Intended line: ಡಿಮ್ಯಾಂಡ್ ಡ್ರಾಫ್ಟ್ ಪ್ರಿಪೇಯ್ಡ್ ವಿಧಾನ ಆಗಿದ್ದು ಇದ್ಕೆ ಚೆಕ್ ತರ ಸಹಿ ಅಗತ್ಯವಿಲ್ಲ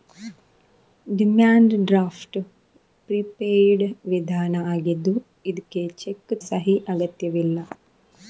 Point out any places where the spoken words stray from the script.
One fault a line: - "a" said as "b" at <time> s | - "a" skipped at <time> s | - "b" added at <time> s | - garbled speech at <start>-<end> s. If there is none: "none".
- "ತರ" skipped at 6.3 s